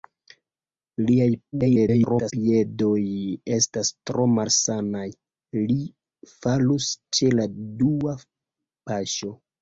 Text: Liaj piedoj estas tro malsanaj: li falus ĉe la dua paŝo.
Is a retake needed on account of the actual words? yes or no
yes